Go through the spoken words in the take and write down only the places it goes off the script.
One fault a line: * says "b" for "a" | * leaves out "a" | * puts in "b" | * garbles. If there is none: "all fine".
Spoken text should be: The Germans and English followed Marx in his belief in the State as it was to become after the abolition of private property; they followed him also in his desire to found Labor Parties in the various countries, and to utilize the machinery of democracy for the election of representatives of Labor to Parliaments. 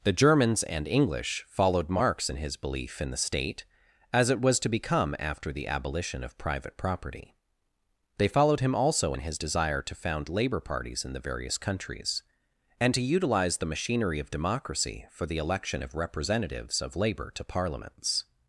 all fine